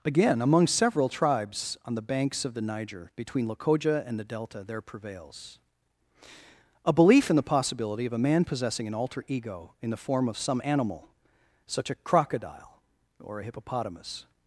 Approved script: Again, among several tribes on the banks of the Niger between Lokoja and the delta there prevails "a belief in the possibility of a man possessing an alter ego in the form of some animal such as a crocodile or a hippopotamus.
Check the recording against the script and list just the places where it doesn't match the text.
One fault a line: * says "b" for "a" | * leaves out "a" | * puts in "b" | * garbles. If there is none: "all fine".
* leaves out "as"